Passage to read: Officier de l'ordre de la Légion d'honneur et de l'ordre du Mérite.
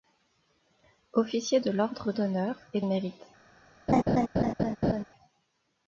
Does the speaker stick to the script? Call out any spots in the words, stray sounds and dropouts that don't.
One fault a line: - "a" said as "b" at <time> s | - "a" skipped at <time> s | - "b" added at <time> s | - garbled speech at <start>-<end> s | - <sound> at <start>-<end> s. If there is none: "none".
- "de la Légion" skipped at 2.1 s
- "de l'ordre du" skipped at 2.8 s
- laugh at 3.9-5.0 s